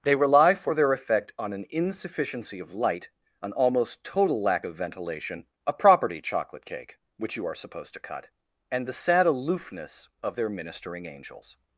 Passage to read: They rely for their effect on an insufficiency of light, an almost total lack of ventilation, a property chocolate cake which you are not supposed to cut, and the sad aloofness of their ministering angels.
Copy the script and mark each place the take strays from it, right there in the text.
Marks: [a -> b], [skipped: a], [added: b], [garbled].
They rely for their effect on an insufficiency of light, an almost total lack of ventilation, a property chocolate cake which you are [skipped: not] supposed to cut, and the sad aloofness of their ministering angels.